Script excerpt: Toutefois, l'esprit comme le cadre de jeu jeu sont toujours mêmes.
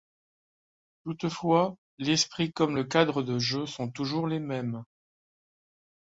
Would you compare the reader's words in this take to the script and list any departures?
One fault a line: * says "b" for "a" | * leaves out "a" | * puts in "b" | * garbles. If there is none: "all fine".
* leaves out "jeu"
* puts in "les"